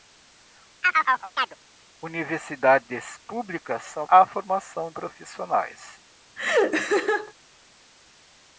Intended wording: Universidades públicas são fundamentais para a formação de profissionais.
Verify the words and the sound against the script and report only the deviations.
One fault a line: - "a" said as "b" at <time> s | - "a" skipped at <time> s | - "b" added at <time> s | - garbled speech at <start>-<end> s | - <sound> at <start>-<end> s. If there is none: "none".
- chirp at 0.8-1.6 s
- "fundamentais para" skipped at 4.1 s
- "de" skipped at 4.9 s
- laugh at 6.4-7.3 s